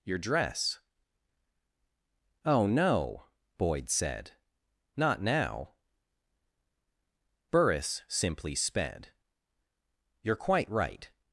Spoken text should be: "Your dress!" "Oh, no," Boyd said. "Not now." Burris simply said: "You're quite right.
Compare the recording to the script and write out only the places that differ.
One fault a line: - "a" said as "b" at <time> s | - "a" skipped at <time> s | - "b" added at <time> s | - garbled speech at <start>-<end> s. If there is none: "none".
- "said" said as "sped" at 8.5 s